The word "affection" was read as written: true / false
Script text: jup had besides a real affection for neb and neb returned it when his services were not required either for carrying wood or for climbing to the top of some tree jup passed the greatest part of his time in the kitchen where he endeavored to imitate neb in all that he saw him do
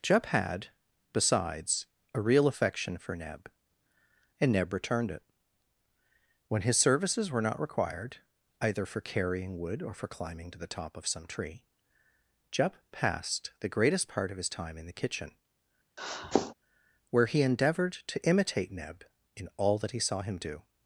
true